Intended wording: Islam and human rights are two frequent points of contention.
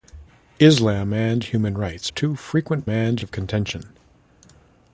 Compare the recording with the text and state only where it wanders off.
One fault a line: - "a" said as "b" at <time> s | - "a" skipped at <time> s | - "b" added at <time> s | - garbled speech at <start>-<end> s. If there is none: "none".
- "are" skipped at 2.1 s
- "points" said as "and" at 2.9 s